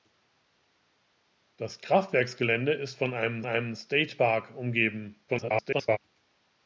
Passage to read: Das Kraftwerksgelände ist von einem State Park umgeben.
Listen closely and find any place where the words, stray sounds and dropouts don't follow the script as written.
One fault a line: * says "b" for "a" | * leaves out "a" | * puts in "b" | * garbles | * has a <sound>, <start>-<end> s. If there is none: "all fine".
* puts in "einem"
* garbles